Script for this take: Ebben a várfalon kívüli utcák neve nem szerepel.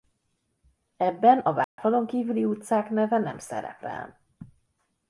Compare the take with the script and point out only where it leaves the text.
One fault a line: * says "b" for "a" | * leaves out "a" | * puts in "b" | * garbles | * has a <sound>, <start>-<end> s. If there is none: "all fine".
* has a dropout, 1.6-1.8 s